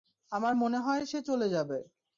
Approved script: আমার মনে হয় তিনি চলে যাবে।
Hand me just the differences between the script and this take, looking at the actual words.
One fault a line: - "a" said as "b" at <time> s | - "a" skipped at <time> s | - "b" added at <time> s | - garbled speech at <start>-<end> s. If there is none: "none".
- "তিনি" said as "সে" at 1.1 s